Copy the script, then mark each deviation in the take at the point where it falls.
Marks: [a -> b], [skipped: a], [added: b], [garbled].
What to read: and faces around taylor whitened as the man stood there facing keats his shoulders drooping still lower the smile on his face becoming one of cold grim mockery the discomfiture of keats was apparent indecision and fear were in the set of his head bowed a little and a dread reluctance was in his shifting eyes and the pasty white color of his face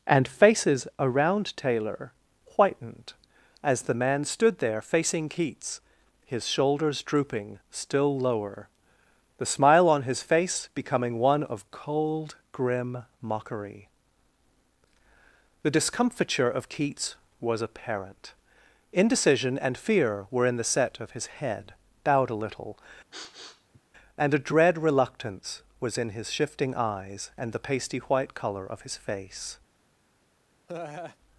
and faces around taylor whitened as the man stood there facing keats his shoulders drooping still lower the smile on his face becoming one of cold grim mockery the discomfiture of keats was apparent indecision and fear were in the set of his head bowed a little and a dread reluctance was in his shifting eyes and the pasty white color of his face